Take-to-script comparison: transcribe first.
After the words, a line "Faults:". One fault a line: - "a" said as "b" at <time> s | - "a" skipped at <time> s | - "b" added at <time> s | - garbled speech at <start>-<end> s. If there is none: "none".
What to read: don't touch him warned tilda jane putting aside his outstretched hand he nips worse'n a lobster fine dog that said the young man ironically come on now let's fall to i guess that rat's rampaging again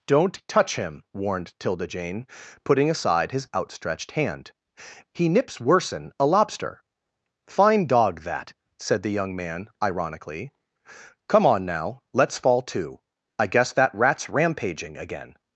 don't touch him warned tilda jane putting aside his outstretched hand he nips worse'n a lobster fine dog that said the young man ironically come on now let's fall to i guess that rat's rampaging again
Faults:
none